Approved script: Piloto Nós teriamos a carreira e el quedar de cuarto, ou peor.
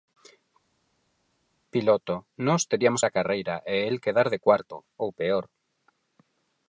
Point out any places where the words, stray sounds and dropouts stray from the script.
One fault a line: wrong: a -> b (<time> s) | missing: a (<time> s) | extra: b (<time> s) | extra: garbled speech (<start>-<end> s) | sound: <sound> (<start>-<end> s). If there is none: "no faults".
no faults